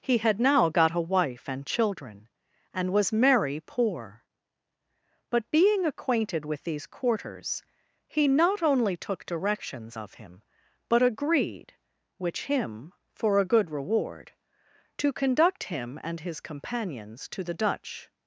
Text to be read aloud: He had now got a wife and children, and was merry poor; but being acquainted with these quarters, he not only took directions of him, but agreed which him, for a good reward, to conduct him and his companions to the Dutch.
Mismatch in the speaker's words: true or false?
false